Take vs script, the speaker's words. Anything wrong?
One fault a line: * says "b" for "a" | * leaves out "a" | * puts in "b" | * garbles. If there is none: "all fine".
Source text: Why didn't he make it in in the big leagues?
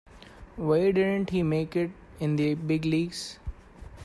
* leaves out "in"